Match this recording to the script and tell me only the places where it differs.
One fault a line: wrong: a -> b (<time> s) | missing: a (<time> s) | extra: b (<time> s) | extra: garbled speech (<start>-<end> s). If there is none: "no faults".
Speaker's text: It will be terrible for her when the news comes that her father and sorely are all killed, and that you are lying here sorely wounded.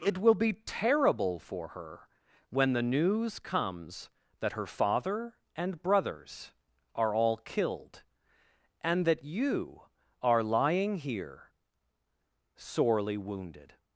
wrong: sorely -> brothers (5.8 s)